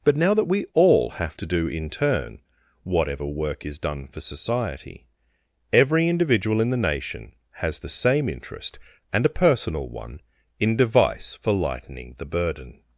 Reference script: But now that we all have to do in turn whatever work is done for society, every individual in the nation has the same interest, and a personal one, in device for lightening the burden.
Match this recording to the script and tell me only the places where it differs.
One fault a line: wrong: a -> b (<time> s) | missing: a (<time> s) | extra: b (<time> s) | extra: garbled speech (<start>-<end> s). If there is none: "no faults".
no faults